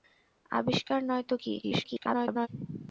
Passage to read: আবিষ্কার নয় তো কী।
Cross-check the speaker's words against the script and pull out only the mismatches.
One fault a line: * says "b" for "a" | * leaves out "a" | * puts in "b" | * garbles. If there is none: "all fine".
* garbles